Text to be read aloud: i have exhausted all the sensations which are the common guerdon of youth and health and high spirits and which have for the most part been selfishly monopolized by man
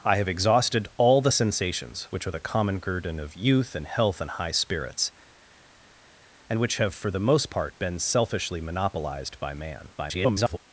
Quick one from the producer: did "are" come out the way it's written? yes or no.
yes